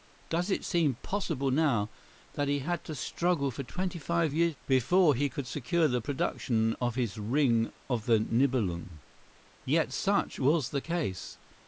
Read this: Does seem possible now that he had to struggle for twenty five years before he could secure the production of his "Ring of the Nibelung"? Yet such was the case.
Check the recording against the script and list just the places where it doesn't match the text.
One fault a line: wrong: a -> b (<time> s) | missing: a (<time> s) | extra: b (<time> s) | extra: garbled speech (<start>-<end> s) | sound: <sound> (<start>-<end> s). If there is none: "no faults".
extra: it (0.5 s)